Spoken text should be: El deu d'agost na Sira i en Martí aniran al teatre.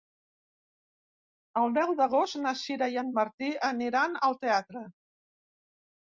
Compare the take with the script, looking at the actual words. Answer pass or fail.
pass